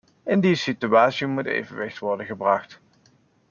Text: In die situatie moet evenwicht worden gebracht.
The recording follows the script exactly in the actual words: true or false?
true